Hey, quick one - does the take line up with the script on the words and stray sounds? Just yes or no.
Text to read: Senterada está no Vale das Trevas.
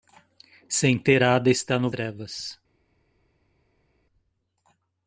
no